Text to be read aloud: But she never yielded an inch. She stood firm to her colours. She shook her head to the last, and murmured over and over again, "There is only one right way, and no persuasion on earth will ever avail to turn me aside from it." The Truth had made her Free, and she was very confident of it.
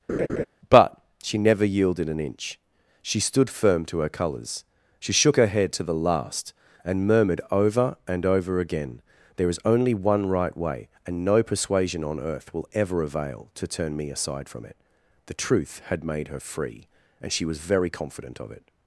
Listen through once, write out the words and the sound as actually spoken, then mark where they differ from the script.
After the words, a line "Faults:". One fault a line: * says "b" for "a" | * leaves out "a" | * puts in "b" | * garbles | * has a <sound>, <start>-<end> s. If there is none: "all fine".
But she never yielded an inch. She stood firm to her colours. She shook her head to the last, and murmured over and over again, "There is only one right way, and no persuasion on earth will ever avail to turn me aside from it." The Truth had made her Free, and she was very confident of it.
Faults:
* has a laugh, 0.1-0.5 s